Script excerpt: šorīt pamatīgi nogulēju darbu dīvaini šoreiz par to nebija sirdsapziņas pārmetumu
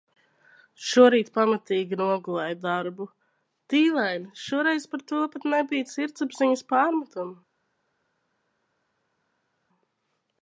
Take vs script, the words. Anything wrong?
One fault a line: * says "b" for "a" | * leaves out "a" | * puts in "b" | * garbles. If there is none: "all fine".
* puts in "pat"